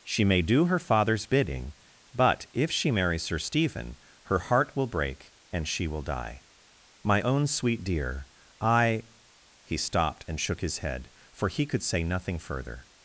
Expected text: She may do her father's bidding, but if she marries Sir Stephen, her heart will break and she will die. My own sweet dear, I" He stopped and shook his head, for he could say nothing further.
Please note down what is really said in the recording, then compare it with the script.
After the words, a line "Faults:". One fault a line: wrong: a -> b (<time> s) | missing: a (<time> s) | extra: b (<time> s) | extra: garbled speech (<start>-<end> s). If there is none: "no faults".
She may do her father's bidding, but if she marries Sir Stephen, her heart will break and she will die. My own sweet dear, I" He stopped and shook his head, for he could say nothing further.
Faults:
no faults